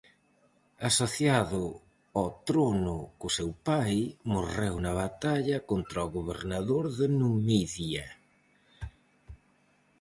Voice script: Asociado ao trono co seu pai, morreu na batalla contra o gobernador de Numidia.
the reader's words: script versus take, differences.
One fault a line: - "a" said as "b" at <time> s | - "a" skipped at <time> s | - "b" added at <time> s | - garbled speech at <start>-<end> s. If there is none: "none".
none